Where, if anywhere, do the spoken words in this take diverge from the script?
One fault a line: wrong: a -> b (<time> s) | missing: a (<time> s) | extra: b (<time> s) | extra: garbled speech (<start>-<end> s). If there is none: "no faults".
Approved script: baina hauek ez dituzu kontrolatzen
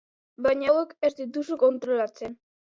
no faults